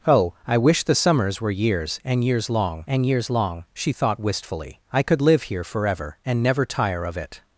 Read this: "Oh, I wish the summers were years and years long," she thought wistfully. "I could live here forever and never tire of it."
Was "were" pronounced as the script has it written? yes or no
yes